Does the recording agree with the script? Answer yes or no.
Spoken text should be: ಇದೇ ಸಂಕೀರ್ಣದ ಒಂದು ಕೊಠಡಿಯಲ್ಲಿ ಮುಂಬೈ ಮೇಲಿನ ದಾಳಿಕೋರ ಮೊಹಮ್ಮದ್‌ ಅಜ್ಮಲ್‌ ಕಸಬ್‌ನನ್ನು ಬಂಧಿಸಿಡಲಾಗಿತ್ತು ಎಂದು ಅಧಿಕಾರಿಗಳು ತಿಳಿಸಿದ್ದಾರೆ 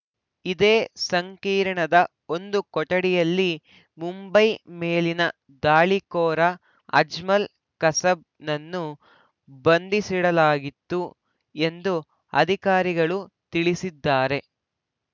no